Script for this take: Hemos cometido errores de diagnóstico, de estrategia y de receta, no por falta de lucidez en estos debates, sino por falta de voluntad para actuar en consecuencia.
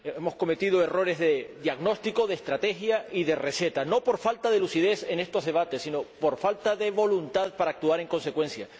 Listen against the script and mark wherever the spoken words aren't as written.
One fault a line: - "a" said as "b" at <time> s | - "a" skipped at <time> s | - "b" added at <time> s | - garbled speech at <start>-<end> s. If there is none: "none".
none